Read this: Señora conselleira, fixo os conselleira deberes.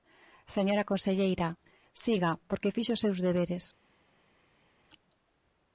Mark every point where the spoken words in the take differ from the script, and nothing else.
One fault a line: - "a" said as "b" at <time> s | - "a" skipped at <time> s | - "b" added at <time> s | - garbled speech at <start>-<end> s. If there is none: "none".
- "siga porque" added at 2.0 s
- "conselleira" said as "seus" at 3.0 s